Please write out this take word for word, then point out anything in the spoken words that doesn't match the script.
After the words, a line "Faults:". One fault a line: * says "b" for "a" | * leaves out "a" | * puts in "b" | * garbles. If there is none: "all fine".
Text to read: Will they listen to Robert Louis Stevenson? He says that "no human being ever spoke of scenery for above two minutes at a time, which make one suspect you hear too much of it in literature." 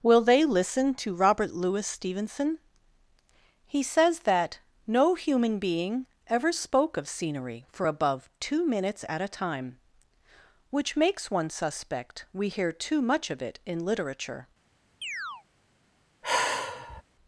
Will they listen to Robert Louis Stevenson? He says that "no human being ever spoke of scenery for above two minutes at a time, which makes one suspect we hear too much of it in literature."
Faults:
* says "makes" for "make"
* says "we" for "you"